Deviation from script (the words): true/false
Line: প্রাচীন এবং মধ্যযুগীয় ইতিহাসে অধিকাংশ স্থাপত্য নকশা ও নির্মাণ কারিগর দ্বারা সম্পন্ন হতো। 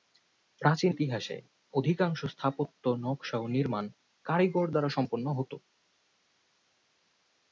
true